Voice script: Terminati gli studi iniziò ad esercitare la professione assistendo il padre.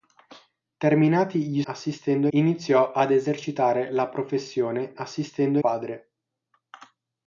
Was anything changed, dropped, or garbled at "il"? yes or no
yes